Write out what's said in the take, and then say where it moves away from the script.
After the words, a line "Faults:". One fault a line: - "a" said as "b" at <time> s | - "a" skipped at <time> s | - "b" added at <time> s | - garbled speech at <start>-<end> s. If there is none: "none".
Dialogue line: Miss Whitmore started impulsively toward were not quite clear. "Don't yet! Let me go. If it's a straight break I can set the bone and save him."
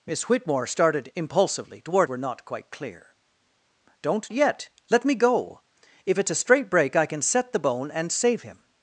Miss Whitmore started impulsively toward were not quite clear. "Don't yet! Let me go. If it's a straight break I can set the bone and save him."
Faults:
none